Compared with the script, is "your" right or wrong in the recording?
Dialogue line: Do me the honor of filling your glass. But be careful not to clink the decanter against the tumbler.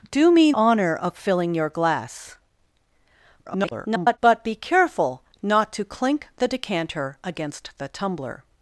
right